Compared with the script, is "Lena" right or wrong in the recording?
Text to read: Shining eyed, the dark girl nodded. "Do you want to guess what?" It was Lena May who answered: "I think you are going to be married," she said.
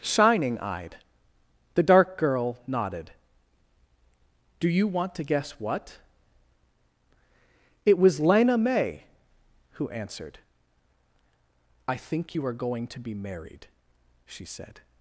right